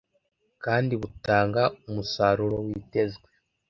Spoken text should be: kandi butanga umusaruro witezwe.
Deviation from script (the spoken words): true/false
false